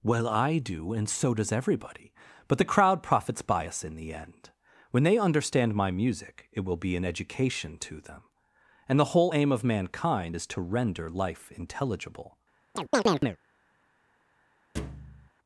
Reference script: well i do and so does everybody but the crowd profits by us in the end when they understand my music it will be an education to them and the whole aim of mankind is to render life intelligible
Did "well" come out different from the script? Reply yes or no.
no